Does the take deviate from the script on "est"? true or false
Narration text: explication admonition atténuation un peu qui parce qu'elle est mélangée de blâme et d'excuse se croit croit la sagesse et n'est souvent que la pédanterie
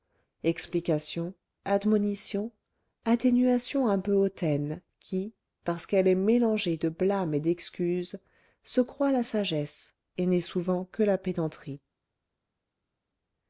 false